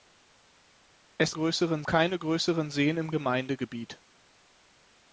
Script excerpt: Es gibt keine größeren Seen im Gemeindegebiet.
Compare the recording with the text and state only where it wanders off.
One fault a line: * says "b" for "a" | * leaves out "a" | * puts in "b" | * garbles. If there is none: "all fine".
* says "größeren" for "gibt"